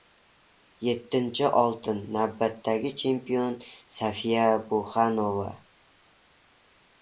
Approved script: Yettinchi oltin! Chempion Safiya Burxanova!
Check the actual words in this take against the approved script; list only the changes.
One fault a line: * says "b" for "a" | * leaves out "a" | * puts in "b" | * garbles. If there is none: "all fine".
* puts in "Navbatdagi"